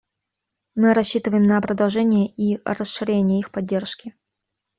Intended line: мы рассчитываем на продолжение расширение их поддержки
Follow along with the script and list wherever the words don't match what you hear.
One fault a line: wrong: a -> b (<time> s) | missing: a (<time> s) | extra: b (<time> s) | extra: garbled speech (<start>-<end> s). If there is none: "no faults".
extra: и (2.4 s)